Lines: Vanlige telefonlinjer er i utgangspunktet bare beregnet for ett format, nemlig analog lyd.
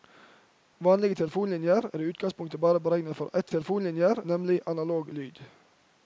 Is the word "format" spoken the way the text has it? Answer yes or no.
no